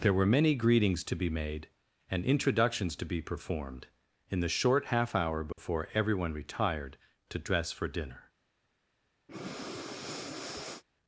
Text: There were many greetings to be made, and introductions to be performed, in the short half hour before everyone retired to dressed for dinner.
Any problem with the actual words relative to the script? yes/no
yes